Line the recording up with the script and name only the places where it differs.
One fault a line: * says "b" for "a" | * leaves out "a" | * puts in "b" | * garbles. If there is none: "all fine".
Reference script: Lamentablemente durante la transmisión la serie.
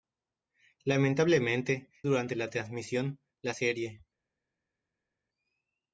all fine